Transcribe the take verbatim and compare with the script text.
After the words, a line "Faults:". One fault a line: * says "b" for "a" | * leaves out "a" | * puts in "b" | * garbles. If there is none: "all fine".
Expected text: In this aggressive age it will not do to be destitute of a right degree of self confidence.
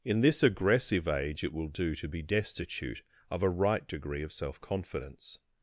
In this aggressive age it will do to be destitute of a right degree of self confidence.
Faults:
* leaves out "not"